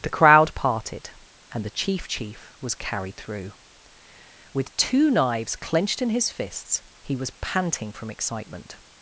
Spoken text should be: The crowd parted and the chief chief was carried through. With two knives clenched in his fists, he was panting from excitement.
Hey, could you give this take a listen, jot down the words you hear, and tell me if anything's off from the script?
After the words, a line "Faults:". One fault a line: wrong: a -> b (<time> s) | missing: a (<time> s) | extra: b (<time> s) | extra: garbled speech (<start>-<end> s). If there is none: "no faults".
The crowd parted and the chief chief was carried through. With two knives clenched in his fists, he was panting from excitement.
Faults:
no faults